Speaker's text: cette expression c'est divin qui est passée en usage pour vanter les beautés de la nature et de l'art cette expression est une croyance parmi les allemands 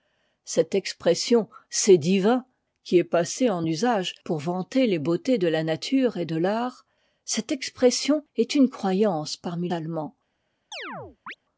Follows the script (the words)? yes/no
no